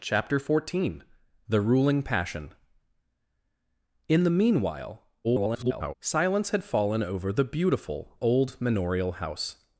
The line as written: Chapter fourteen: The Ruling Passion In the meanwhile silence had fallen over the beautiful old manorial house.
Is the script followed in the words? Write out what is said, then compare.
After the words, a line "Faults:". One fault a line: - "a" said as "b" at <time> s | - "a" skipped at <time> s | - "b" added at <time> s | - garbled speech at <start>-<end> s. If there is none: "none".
Chapter fourteen: The Ruling Passion In the meanwhile [garbled] silence had fallen over the beautiful old manorial house.
Faults:
- garbled speech at 5.2-5.9 s